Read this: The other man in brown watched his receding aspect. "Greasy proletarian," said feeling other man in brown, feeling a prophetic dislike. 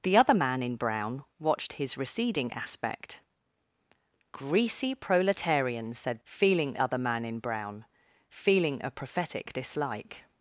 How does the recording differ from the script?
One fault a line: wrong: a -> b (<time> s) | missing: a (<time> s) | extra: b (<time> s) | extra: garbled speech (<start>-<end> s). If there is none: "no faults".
no faults